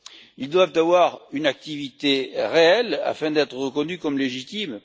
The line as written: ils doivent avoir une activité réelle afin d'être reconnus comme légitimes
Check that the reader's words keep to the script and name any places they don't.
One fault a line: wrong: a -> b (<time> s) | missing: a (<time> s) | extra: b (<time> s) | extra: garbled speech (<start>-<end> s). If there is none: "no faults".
no faults